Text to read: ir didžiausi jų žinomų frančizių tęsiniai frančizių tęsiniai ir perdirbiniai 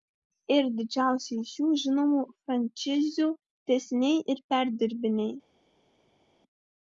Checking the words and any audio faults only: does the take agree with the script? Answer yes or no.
no